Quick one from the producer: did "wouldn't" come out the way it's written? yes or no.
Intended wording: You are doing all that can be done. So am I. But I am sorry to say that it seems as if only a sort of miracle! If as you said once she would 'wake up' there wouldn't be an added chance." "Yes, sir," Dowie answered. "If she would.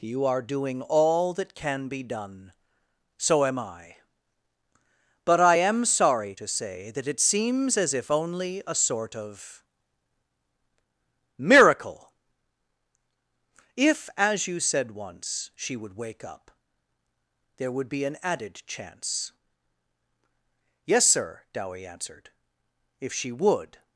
no